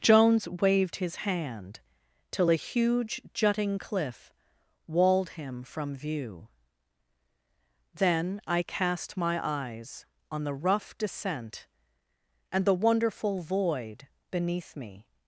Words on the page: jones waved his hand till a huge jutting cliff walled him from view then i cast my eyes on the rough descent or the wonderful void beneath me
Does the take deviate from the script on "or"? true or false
true